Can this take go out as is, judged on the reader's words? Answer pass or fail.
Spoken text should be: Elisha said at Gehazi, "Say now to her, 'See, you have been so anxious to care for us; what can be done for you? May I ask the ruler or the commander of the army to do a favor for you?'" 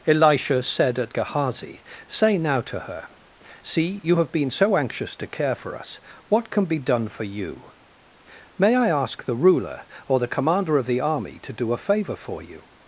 pass